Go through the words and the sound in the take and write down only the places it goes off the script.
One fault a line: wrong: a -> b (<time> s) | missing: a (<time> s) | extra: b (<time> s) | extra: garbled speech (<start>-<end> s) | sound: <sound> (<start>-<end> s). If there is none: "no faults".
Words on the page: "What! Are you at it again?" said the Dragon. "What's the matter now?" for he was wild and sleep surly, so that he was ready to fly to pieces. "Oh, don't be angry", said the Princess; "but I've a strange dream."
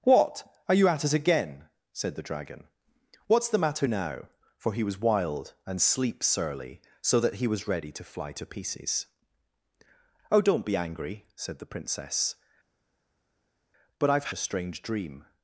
no faults